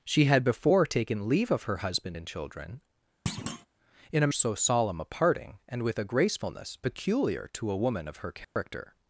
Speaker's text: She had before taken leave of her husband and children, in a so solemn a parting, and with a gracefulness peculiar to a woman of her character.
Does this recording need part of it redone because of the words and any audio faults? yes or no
yes